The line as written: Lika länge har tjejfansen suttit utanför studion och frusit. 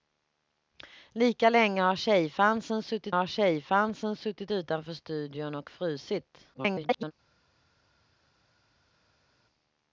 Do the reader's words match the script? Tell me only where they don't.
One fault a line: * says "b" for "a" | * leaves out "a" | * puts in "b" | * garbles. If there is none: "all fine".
* puts in "har tjejfansen suttit"
* garbles